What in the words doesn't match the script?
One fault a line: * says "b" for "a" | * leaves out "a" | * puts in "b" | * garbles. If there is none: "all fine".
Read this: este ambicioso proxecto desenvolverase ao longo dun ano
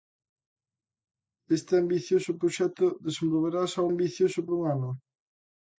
* says "ambicioso" for "longo"